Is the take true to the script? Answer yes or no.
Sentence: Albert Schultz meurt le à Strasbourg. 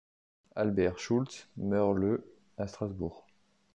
yes